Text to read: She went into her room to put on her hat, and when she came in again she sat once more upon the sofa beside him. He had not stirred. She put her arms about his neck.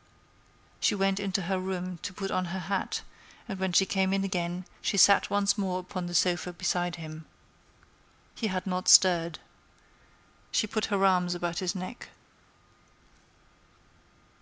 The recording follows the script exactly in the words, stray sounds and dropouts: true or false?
true